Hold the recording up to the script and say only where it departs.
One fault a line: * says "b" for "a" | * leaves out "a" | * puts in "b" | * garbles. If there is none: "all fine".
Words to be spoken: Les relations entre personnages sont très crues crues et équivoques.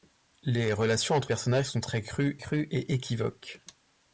all fine